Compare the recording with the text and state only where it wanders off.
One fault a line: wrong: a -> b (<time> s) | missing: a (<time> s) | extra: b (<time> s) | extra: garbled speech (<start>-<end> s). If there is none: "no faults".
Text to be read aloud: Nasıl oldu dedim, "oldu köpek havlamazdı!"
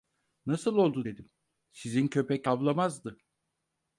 wrong: oldu -> sizin (1.7 s)